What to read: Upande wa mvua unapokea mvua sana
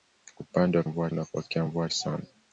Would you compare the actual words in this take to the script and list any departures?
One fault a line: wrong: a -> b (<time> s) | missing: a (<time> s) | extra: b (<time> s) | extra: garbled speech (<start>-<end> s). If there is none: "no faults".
no faults